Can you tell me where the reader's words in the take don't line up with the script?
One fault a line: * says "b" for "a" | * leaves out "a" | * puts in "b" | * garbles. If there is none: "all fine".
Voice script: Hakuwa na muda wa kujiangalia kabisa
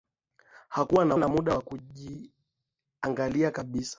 * puts in "na"